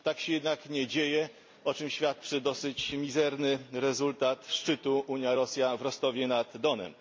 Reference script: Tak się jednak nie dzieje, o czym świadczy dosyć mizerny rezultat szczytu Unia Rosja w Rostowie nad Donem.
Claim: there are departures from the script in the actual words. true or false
false